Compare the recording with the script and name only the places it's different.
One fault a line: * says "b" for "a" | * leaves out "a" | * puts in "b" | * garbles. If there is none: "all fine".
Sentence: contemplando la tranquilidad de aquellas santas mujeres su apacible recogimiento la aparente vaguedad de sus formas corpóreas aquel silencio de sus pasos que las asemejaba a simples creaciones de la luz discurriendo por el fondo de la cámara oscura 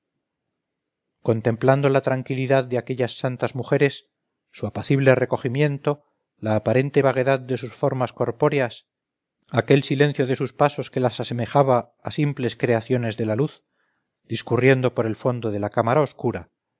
all fine